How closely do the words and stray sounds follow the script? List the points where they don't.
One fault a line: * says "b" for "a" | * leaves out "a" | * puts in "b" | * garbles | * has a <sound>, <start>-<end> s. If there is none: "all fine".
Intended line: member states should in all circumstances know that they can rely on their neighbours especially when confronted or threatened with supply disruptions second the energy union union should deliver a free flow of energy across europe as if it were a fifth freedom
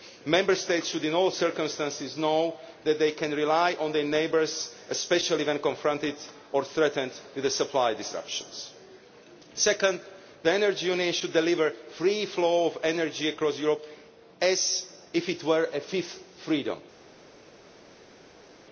* leaves out "union"